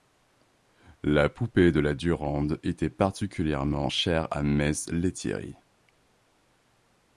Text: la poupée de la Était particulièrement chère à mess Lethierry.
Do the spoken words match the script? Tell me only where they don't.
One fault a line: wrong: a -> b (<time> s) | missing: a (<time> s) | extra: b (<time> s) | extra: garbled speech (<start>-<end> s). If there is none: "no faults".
extra: Durande (1.9 s)